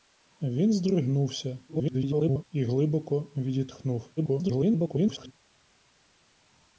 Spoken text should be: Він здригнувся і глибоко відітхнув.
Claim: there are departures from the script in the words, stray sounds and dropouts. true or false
true